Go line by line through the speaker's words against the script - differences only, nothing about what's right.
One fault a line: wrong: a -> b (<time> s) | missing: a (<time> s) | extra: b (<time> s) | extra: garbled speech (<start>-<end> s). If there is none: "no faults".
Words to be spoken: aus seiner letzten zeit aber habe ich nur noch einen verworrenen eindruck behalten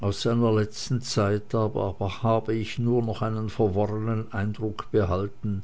no faults